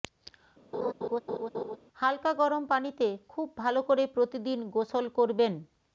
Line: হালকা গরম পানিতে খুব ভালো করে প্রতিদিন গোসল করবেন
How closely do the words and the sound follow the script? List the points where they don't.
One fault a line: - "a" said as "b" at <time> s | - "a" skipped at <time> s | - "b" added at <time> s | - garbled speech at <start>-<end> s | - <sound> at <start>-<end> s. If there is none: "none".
- laugh at 0.7-1.8 s